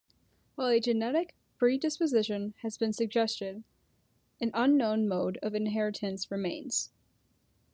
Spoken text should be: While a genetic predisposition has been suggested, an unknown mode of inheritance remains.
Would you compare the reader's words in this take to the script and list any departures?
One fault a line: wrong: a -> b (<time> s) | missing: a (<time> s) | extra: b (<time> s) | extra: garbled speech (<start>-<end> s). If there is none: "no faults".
no faults